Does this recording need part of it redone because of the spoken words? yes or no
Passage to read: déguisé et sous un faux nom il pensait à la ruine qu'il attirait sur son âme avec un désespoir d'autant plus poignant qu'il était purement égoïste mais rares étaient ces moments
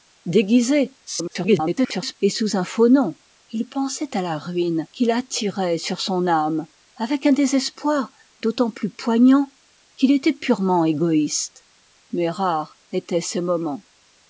yes